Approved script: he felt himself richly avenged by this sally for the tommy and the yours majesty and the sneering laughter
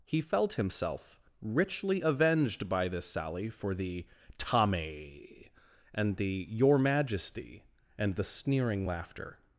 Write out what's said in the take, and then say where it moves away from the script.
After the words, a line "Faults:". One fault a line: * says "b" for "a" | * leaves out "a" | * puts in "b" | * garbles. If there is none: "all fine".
he felt himself richly avenged by this sally for the tommy and the your majesty and the sneering laughter
Faults:
* says "your" for "yours"